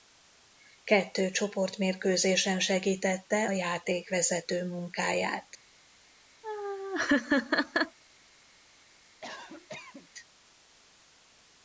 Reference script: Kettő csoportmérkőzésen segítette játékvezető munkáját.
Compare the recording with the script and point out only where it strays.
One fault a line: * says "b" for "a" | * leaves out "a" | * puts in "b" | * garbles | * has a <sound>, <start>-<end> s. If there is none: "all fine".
* has a laugh, 6.4-8.0 s
* has a cough, 9.2-10.1 s